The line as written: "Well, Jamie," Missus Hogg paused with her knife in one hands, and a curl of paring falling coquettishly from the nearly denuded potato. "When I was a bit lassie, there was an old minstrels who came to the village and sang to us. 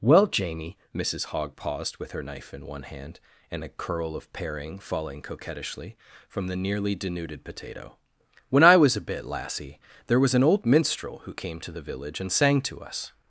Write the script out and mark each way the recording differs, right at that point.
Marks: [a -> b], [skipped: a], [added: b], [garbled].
"Well, Jamie," Missus Hogg paused with her knife in one [hands, -> hand] and a curl of paring falling coquettishly from the nearly denuded potato. "When I was a bit lassie, there was an old [minstrels -> minstrel] who came to the village and sang to us.